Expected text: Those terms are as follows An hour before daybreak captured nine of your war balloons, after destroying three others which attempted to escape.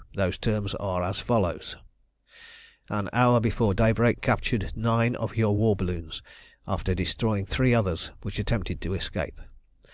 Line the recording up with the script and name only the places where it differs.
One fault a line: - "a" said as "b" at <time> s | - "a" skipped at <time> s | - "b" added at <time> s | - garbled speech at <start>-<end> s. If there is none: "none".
none